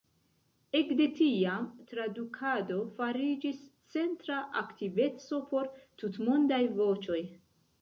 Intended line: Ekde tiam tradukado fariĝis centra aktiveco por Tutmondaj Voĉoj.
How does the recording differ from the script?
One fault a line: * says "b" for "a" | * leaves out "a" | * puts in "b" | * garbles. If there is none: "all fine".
all fine